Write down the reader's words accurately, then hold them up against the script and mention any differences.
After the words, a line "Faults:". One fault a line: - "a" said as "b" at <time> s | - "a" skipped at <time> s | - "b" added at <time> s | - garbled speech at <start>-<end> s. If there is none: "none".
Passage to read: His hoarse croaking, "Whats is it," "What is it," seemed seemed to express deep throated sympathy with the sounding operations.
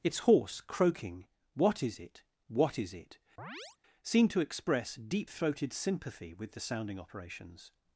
Its hoarse croaking, "What is it," "What is it," seemed to express deep throated sympathy with the sounding operations.
Faults:
- "His" said as "Its" at 0.0 s
- "Whats" said as "What" at 1.5 s
- "seemed" skipped at 4.3 s